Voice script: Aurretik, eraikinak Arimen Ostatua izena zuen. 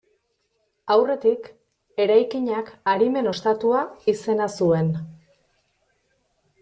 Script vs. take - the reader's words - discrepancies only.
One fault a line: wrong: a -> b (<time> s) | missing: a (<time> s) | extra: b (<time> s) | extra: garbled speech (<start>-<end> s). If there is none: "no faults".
no faults